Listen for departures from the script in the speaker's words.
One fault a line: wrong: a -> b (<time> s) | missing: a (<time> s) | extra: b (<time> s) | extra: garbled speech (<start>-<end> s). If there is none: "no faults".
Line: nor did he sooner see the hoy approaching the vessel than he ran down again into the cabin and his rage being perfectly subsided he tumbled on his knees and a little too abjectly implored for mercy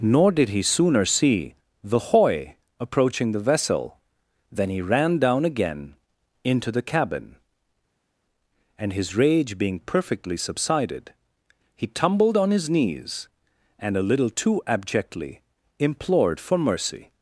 no faults